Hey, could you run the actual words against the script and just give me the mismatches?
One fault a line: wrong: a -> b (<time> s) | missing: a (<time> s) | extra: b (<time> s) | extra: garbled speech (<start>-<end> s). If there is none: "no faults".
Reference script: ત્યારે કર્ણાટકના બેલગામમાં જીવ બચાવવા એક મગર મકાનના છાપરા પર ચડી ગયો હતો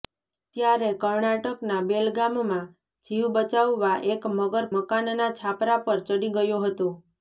no faults